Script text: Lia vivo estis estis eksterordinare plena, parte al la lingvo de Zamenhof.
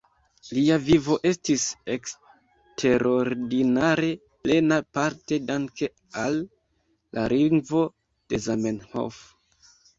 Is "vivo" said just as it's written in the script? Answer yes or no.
yes